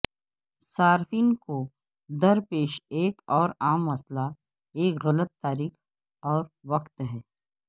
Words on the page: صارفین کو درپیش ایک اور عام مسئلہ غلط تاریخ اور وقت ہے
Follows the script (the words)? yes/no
no